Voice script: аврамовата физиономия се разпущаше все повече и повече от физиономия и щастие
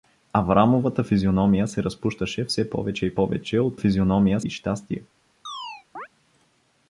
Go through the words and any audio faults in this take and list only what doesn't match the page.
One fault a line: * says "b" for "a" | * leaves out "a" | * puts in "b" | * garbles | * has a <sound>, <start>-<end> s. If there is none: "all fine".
* has a chirp, 5.5-6.1 s